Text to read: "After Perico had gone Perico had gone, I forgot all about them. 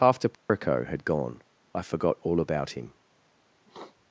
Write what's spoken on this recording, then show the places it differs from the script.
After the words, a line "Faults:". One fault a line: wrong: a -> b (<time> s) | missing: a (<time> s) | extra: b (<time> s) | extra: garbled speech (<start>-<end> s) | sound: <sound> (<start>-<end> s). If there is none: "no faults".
"After Perico had gone, I forgot all about him.
Faults:
sound: dropout (0.3-0.5 s)
missing: Perico had gone (1.4 s)
wrong: them -> him (2.7 s)
sound: sniff (3.7-4.0 s)